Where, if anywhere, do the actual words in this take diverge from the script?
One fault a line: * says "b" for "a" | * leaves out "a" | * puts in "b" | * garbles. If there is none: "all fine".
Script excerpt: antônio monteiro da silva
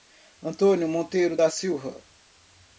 all fine